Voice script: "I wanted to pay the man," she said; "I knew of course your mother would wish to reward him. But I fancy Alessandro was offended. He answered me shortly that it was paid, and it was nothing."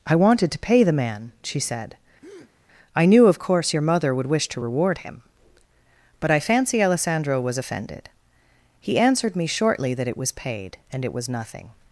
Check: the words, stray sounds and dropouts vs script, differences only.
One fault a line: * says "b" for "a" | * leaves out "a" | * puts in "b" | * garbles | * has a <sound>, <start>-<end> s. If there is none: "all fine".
* has a breath, 2.2-2.5 s